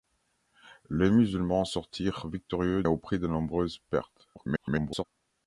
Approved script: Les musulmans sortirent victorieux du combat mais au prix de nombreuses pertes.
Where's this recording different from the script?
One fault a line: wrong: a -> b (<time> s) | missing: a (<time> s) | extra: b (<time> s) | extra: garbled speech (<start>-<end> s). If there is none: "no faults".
missing: du combat mais (2.8 s)
extra: garbled speech (4.3-5.0 s)